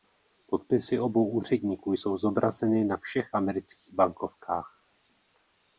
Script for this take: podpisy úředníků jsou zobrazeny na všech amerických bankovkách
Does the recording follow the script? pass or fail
fail